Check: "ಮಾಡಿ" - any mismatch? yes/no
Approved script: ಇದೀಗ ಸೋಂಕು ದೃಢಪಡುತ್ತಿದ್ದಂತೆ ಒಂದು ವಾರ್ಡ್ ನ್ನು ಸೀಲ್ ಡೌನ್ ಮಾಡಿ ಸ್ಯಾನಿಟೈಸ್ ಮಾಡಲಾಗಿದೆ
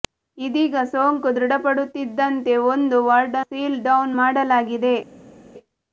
yes